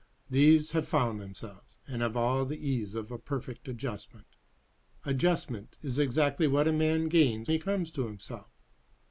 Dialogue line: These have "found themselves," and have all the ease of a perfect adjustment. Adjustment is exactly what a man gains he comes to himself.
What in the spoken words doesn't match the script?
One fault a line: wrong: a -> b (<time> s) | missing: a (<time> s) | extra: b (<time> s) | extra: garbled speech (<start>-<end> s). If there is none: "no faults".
no faults